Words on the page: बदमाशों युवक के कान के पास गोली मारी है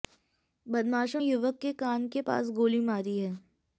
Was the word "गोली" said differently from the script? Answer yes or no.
no